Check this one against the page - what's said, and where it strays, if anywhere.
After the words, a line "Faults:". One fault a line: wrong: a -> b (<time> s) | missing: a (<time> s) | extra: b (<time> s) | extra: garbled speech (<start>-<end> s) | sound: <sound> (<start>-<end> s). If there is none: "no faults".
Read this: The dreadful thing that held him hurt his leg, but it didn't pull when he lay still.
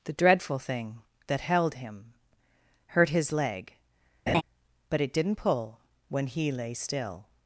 The dreadful thing that held him hurt his leg, but it didn't pull when he lay still.
Faults:
sound: laugh (4.3-4.4 s)